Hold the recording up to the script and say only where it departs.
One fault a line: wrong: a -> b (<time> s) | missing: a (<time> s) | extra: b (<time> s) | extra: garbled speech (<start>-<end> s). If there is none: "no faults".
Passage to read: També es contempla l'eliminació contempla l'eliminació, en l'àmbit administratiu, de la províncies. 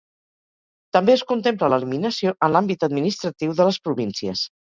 missing: contempla l'eliminació (2.3 s)
wrong: la -> les (3.7 s)